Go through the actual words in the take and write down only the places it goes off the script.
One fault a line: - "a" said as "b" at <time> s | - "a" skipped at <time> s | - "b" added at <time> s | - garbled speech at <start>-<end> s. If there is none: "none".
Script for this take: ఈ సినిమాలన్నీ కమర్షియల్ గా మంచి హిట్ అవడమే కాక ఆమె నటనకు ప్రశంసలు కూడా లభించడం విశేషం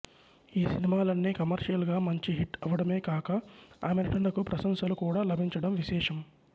none